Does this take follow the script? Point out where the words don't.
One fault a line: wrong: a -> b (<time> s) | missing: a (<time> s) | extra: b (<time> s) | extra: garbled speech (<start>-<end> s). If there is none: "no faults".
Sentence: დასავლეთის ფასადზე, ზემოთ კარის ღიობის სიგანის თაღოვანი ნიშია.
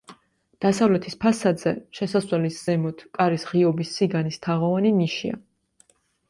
extra: შესასვლელის (2.0 s)